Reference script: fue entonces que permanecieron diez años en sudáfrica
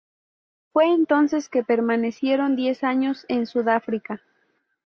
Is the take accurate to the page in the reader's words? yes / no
yes